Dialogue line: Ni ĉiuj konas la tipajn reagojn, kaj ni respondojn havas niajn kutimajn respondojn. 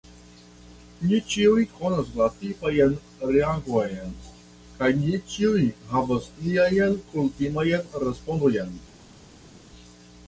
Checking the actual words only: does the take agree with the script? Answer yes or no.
no